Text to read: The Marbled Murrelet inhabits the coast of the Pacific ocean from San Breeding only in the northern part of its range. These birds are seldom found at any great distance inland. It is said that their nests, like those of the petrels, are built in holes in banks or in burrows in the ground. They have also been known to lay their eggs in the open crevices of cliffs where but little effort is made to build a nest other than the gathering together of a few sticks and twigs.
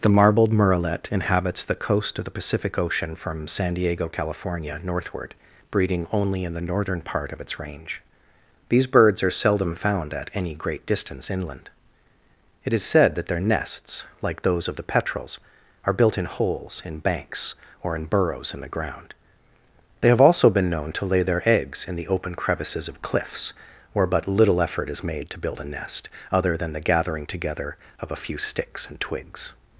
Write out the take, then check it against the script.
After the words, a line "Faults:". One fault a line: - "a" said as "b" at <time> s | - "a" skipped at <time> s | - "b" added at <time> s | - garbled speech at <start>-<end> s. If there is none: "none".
The Marbled Murrelet inhabits the coast of the Pacific ocean from San Diego, California, northward, breeding only in the northern part of its range. These birds are seldom found at any great distance inland. It is said that their nests, like those of the petrels, are built in holes in banks or in burrows in the ground. They have also been known to lay their eggs in the open crevices of cliffs where but little effort is made to build a nest other than the gathering together of a few sticks and twigs.
Faults:
- "Diego California northward" added at 3.8 s